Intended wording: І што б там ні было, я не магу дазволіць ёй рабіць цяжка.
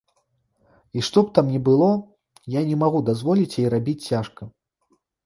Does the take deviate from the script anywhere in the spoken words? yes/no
no